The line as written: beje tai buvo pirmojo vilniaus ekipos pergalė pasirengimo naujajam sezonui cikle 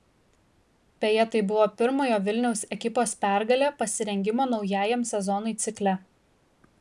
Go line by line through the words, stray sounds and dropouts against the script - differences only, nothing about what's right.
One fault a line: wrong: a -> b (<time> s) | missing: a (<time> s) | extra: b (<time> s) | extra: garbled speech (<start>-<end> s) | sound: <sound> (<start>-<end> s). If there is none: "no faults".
no faults